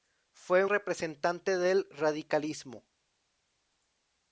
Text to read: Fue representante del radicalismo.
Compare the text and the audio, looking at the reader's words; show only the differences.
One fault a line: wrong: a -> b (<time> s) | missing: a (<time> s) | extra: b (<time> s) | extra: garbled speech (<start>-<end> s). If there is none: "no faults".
no faults